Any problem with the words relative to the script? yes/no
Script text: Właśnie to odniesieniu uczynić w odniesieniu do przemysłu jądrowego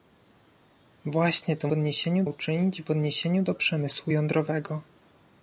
no